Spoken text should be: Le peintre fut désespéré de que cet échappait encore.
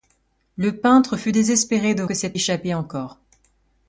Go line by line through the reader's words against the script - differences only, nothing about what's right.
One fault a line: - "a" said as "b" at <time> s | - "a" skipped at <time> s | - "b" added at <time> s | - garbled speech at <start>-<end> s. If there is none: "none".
none